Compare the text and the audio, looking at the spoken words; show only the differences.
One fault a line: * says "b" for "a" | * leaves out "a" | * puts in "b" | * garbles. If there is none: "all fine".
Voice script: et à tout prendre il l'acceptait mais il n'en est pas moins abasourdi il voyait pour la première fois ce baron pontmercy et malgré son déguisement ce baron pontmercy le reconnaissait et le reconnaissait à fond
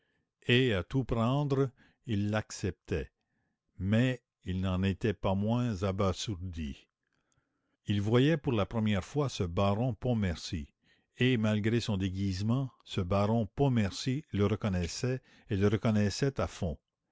* says "était" for "est"